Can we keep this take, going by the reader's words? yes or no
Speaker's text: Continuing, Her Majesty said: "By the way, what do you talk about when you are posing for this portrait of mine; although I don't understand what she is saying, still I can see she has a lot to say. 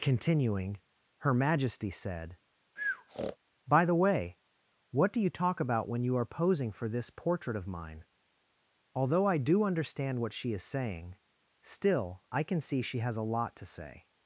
no